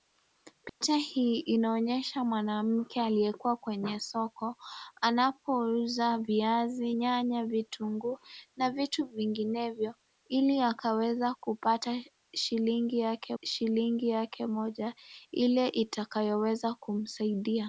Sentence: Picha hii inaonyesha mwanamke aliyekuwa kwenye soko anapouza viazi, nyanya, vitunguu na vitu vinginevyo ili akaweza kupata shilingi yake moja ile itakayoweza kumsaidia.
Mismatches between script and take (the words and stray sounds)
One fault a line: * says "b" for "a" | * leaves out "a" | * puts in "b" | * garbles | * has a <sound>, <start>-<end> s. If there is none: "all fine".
* has a dropout, 0.7-0.8 s
* puts in "shilingi yake"